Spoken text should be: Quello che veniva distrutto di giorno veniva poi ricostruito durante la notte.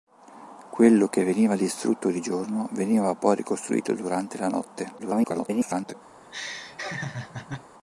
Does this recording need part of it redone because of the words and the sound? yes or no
yes